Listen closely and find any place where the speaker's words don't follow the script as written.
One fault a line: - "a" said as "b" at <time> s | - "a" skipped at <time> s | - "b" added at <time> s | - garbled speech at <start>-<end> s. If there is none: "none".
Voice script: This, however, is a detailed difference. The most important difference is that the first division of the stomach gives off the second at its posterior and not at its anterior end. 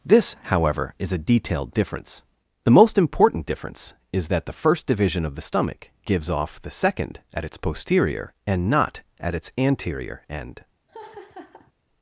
none